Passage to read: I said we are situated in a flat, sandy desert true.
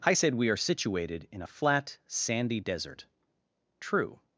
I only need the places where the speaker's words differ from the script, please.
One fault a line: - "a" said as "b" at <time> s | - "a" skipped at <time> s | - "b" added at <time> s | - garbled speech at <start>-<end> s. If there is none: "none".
none